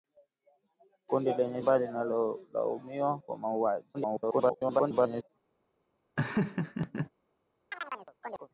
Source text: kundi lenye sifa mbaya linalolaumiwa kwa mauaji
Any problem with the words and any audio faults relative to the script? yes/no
yes